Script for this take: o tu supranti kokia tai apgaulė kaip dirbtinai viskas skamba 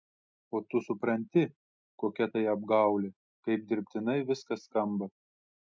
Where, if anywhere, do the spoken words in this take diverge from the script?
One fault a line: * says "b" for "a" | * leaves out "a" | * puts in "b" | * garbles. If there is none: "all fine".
all fine